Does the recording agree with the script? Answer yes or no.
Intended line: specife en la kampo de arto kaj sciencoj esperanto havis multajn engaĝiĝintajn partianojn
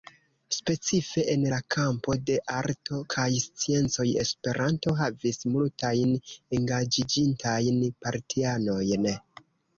yes